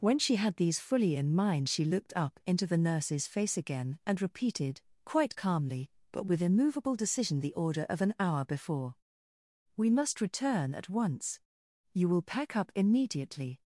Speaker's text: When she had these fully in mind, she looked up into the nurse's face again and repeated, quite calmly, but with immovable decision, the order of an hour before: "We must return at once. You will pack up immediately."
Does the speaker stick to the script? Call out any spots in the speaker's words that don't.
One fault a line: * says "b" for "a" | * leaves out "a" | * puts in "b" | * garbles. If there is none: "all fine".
all fine